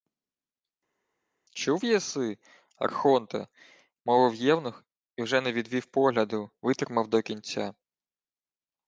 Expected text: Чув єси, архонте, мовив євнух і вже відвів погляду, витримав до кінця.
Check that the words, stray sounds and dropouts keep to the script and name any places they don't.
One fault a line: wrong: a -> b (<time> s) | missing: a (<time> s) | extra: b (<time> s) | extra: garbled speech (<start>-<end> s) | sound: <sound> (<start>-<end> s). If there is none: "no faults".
extra: не (5.4 s)